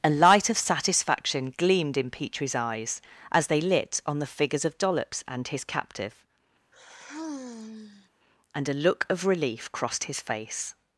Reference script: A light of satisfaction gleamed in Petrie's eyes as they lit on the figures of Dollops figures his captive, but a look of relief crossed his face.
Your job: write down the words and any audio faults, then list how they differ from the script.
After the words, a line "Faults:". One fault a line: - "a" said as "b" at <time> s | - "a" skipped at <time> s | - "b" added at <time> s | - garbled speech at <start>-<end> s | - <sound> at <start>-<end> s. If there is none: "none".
A light of satisfaction gleamed in Petrie's eyes as they lit on the figures of Dollops and his captive, and a look of relief crossed his face.
Faults:
- "figures" said as "and" at 5.3 s
- sigh at 6.7-8.1 s
- "but" said as "and" at 8.5 s